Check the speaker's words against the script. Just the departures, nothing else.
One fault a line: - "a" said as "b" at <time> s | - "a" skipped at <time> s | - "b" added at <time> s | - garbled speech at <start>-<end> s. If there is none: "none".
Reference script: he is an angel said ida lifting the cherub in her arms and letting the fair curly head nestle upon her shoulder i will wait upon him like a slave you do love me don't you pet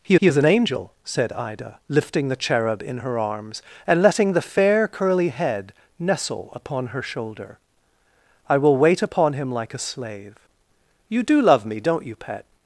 - "he" added at 0.1 s